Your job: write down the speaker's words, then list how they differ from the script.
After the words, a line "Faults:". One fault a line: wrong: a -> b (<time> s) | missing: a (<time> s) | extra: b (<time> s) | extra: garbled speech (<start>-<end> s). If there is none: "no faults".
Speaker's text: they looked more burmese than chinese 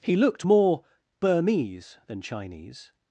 he looked more burmese than chinese
Faults:
wrong: they -> he (0.0 s)